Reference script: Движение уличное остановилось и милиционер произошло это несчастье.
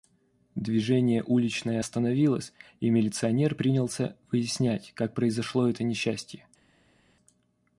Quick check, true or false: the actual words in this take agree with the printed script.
false